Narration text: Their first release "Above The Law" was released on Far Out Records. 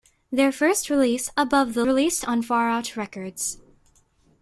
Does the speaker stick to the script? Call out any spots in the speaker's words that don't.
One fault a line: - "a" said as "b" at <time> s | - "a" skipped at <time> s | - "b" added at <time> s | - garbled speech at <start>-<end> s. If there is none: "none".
- "Law was" skipped at 1.9 s